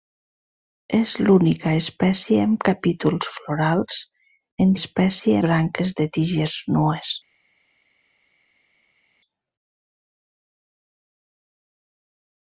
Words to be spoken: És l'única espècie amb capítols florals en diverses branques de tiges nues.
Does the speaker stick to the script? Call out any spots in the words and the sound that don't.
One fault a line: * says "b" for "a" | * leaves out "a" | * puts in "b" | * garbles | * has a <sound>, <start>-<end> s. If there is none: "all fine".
* says "espècie" for "diverses"